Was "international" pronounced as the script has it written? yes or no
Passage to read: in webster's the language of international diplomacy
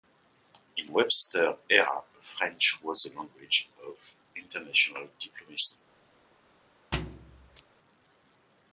yes